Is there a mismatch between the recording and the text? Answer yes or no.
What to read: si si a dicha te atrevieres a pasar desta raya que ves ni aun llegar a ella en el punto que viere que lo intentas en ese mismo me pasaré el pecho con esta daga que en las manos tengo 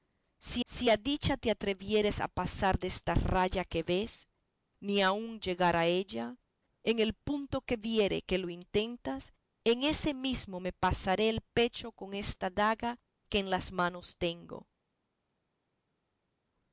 no